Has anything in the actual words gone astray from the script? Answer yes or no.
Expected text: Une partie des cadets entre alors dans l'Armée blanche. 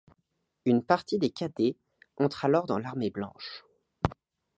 no